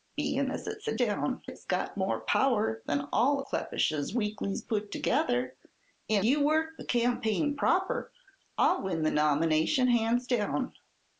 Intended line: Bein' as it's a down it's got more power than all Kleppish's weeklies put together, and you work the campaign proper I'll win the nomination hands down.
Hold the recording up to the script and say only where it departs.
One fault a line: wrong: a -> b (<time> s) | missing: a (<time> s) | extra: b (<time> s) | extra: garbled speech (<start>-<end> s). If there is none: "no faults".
no faults